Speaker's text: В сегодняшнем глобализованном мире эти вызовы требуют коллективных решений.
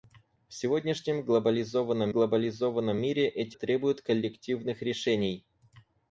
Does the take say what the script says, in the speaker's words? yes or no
no